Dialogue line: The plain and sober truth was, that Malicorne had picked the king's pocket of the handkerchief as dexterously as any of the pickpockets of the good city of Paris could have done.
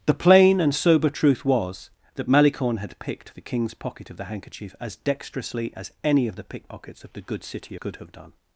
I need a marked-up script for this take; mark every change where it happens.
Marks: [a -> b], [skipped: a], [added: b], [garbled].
The plain and sober truth was, that Malicorne had picked the king's pocket of the handkerchief as dexterously as any of the pickpockets of the good city [skipped: of Paris] could have done.